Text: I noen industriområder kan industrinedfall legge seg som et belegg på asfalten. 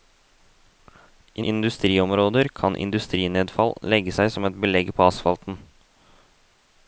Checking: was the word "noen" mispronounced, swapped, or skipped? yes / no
yes